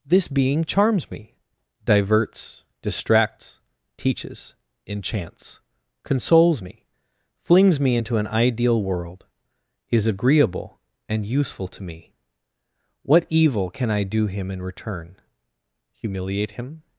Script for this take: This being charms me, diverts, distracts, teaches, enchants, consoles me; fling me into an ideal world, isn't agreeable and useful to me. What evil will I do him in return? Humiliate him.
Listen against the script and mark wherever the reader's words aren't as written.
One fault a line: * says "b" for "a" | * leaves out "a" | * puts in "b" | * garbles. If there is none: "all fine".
* says "flings" for "fling"
* says "is" for "isn't"
* says "can" for "will"